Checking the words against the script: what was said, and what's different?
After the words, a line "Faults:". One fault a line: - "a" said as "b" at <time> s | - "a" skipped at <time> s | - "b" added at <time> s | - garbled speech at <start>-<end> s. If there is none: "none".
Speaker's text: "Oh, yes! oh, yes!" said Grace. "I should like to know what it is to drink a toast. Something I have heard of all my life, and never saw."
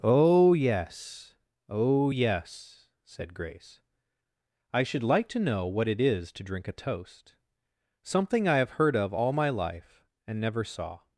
"Oh, yes! oh, yes!" said Grace. "I should like to know what it is to drink a toast. Something I have heard of all my life, and never saw."
Faults:
none